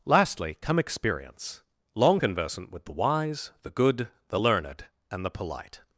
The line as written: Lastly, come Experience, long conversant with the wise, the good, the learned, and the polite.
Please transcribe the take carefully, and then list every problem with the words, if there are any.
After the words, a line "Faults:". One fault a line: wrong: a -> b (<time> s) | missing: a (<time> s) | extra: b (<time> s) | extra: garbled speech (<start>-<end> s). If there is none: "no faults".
Lastly, come Experience, long conversant with the wise, the good, the learned, and the polite.
Faults:
no faults